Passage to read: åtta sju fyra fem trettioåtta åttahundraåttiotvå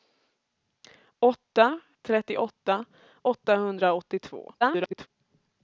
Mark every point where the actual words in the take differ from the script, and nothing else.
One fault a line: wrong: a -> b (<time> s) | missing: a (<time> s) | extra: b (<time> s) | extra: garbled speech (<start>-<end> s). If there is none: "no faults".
missing: sju fyra fem (1.8 s)
extra: garbled speech (4.6-5.1 s)